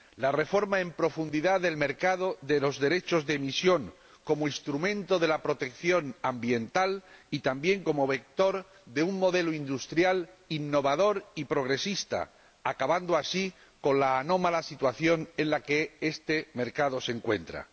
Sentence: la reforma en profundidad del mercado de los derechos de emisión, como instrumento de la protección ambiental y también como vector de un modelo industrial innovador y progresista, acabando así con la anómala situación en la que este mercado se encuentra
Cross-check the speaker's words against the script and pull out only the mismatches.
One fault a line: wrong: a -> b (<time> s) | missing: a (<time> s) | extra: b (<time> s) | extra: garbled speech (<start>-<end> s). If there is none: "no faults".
no faults